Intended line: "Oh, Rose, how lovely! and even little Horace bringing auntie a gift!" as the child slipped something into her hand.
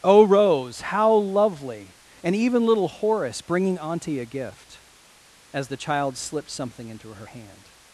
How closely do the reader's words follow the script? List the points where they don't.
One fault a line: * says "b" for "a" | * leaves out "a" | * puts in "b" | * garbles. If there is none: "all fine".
all fine